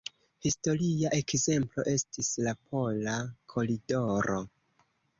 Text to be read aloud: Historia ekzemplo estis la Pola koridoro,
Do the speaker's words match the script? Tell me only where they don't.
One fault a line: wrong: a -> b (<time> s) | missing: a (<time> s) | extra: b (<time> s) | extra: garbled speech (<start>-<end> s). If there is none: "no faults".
no faults